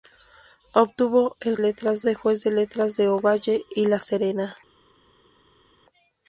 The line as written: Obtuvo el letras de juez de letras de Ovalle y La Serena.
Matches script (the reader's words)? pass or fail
pass